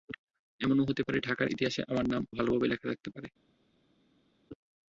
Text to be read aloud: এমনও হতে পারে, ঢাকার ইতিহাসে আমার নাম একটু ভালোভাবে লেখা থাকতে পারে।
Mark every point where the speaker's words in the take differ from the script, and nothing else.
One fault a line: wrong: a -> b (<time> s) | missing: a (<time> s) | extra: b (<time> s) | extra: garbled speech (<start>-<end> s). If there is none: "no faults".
missing: একটু (2.2 s)